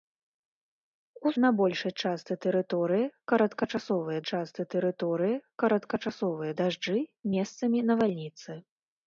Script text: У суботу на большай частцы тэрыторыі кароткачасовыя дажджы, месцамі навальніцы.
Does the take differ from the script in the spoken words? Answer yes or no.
yes